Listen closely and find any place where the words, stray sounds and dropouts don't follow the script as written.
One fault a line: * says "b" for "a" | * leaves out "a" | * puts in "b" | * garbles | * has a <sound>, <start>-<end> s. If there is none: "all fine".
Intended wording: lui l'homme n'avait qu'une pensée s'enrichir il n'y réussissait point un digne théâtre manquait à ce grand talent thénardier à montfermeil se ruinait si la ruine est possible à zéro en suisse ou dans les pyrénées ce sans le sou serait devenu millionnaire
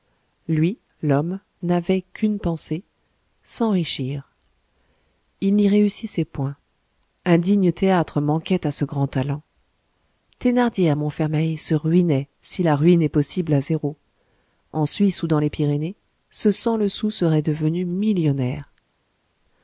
all fine